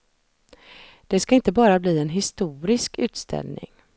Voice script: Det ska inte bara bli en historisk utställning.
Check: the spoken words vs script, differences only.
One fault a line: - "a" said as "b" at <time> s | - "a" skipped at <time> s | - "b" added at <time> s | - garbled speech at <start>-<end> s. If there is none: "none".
none